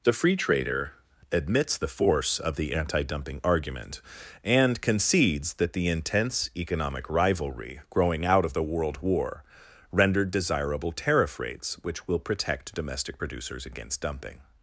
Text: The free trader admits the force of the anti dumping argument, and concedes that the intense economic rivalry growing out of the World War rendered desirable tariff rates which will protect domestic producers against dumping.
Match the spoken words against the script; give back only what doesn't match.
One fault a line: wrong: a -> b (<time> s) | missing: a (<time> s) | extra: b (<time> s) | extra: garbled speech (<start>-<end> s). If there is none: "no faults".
no faults